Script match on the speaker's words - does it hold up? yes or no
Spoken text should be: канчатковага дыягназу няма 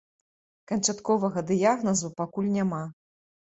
no